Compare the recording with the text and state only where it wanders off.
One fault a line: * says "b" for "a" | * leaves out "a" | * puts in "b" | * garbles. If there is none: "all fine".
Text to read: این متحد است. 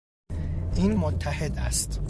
all fine